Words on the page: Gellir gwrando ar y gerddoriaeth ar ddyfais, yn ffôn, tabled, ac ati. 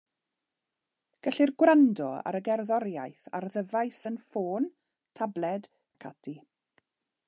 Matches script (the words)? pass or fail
pass